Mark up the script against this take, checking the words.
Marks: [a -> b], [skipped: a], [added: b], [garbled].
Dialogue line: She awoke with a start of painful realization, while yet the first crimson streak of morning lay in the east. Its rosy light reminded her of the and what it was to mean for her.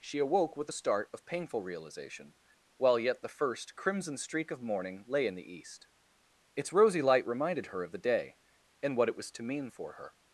She awoke with a start of painful realization, while yet the first crimson streak of morning lay in the east. Its rosy light reminded her of the [added: day] and what it was to mean for her.